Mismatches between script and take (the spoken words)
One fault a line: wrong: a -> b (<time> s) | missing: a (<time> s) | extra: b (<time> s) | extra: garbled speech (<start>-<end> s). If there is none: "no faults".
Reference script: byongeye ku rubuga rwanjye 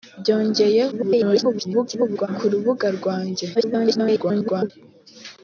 extra: garbled speech (0.9-2.3 s)
extra: garbled speech (3.5-4.7 s)